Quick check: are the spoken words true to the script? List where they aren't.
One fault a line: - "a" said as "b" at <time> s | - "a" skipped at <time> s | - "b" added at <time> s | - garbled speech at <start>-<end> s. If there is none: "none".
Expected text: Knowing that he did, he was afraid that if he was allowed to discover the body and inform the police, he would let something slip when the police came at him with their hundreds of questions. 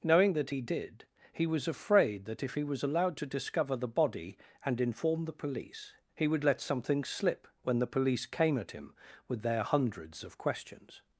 none